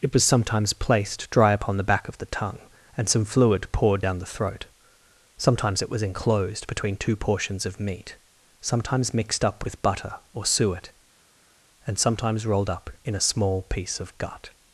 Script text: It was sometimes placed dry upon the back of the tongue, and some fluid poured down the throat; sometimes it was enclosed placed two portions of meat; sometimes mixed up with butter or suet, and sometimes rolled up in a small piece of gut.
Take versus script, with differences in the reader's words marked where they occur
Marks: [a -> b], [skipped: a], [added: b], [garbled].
It was sometimes placed dry upon the back of the tongue, and some fluid poured down the throat; sometimes it was enclosed [placed -> between] two portions of meat; sometimes mixed up with butter or suet, and sometimes rolled up in a small piece of gut.